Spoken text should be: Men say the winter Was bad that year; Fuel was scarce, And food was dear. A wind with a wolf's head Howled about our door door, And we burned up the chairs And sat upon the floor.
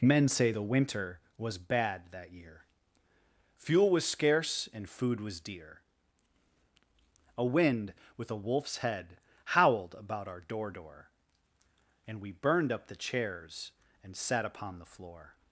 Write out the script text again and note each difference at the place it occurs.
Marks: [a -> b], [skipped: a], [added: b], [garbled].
Men say the winter Was bad that year; Fuel was scarce, And food was dear. A wind with a wolf's head Howled about our door door, And we burned up the chairs And sat upon the floor.